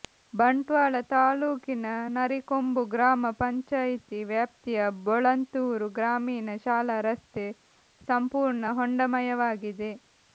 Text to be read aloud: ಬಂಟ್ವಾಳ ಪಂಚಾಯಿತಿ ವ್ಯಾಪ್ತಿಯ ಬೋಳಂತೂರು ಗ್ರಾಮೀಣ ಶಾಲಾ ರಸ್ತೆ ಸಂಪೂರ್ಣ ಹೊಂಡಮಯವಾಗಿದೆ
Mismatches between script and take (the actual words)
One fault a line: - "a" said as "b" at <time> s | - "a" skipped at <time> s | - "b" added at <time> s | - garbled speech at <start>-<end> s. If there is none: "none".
- "ತಾಲೂಕಿನ ನರಿಕೊಂಬು ಗ್ರಾಮ" added at 1.1 s